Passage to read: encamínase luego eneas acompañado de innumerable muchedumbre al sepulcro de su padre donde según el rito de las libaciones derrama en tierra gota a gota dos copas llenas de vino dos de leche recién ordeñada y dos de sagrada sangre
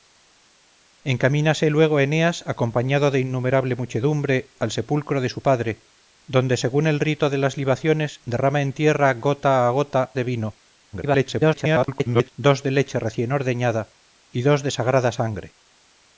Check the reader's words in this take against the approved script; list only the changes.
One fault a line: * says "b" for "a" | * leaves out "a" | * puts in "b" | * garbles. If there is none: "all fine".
* leaves out "dos copas llenas"
* garbles